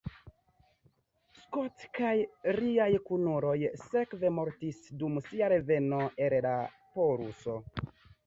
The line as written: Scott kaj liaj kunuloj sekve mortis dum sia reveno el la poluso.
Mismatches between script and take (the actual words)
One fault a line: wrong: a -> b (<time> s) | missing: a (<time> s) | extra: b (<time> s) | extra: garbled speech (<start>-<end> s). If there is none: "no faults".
no faults